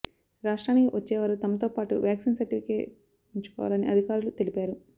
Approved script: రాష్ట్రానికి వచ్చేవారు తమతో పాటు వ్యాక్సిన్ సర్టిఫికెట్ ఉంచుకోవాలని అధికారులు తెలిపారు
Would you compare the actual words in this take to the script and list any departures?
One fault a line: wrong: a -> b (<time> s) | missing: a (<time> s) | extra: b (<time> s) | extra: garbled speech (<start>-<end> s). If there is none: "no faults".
no faults